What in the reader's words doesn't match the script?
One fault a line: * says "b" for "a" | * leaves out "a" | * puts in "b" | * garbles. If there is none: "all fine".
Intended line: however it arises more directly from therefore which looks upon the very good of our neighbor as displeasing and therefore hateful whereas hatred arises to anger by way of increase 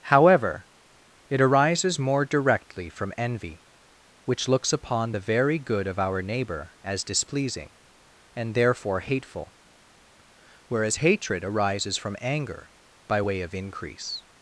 * says "envy" for "therefore"
* says "from" for "to"